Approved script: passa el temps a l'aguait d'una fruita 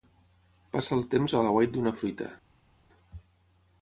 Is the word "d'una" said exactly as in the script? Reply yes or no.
yes